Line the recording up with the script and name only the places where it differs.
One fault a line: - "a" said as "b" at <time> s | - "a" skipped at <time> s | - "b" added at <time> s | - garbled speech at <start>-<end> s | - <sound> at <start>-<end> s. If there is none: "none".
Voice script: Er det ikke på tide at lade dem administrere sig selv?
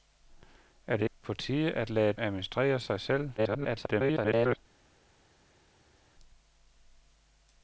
- "ikke" skipped at 1.1 s
- "dem" skipped at 2.1 s
- garbled speech at 3.4-4.6 s